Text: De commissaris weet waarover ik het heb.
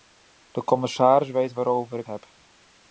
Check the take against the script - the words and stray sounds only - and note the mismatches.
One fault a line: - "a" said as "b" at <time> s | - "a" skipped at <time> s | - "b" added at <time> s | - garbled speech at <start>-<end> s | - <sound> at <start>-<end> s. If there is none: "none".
- "het" skipped at 2.1 s